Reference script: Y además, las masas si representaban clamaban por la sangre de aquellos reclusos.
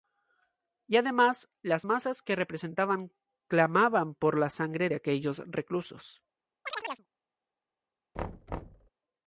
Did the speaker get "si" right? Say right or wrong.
wrong